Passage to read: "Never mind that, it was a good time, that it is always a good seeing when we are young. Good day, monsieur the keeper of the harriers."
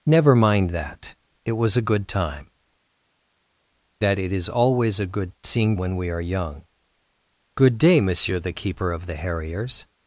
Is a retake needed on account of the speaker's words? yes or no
no